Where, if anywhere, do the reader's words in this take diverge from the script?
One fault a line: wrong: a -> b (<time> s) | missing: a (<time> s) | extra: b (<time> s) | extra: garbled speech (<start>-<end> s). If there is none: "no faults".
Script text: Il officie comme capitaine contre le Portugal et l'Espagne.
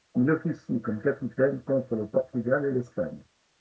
no faults